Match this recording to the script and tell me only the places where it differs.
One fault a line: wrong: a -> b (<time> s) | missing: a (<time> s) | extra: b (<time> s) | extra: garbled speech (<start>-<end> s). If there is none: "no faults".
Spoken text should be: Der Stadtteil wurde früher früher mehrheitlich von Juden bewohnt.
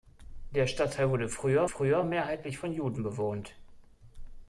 no faults